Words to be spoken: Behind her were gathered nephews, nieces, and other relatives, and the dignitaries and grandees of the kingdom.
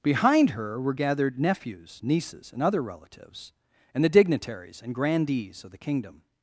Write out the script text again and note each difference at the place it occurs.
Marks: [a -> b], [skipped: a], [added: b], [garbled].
Behind her were gathered nephews, nieces, and other relatives, and the dignitaries and grandees of the kingdom.